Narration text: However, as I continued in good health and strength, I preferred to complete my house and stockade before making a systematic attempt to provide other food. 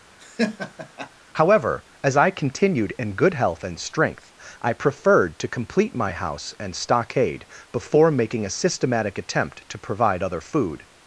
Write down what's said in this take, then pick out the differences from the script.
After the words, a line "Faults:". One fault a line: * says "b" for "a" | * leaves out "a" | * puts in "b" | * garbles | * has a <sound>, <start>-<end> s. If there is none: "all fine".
However, as I continued in good health and strength, I preferred to complete my house and stockade before making a systematic attempt to provide other food.
Faults:
* has a laugh, 0.2-1.1 s